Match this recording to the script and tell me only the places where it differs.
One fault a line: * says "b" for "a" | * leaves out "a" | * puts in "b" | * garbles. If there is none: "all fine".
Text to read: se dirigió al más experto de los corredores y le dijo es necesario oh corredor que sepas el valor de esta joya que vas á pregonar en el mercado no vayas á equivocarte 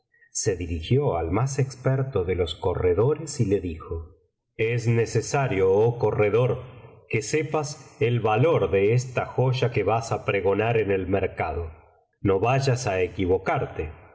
all fine